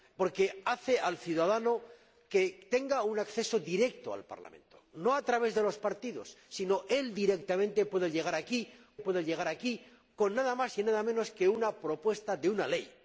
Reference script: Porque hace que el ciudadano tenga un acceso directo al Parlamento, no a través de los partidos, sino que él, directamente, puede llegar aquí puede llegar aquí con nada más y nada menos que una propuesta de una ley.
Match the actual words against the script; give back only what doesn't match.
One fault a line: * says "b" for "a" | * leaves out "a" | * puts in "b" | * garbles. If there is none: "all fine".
all fine